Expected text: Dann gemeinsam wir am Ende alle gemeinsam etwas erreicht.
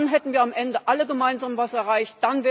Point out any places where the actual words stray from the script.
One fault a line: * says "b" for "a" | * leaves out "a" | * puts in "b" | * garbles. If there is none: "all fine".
* says "hätten" for "gemeinsam"